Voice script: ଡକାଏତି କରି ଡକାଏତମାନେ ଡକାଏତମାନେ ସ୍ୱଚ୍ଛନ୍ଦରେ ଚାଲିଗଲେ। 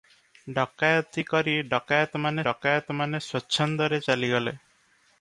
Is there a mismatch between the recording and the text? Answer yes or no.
no